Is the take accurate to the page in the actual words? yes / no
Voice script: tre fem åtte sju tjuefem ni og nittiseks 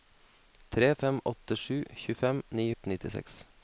yes